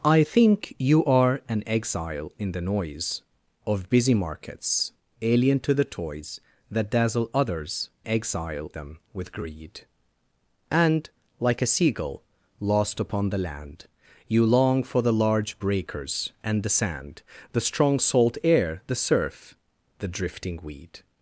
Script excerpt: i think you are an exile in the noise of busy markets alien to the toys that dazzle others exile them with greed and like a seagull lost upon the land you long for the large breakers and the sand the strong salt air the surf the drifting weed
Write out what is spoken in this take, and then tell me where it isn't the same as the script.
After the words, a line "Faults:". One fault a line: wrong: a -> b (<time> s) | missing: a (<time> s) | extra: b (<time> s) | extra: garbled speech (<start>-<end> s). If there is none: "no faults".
i think you are an exile in the noise of busy markets alien to the toys that dazzle others exile them with greed and like a seagull lost upon the land you long for the large breakers and the sand the strong salt air the surf the drifting weed
Faults:
no faults